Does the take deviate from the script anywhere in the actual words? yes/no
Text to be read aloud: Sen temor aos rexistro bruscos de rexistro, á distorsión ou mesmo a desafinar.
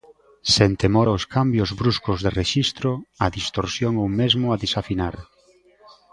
yes